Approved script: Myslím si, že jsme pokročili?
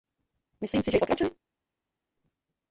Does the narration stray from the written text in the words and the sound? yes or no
yes